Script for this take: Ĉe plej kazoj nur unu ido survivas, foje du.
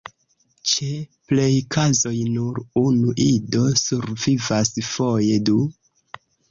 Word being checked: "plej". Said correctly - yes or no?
yes